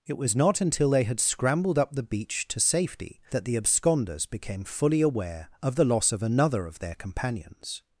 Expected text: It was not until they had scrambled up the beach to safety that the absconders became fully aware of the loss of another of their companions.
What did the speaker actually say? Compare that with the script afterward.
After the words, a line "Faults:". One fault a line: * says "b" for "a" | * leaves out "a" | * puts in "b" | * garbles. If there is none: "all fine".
It was not until they had scrambled up the beach to safety that the absconders became fully aware of the loss of another of their companions.
Faults:
all fine